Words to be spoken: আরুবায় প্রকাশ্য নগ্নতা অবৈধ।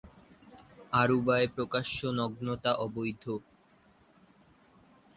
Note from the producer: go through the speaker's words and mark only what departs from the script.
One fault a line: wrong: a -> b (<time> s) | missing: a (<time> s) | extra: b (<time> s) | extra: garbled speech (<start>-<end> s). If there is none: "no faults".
no faults